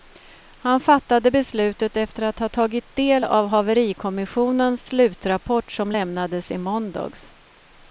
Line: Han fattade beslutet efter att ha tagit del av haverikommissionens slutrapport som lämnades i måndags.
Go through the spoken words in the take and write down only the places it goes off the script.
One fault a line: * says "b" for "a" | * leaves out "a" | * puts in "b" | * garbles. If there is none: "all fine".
all fine